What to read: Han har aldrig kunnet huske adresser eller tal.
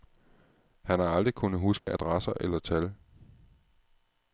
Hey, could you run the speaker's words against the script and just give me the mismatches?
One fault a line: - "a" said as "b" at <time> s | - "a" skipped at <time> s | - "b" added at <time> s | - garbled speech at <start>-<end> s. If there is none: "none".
none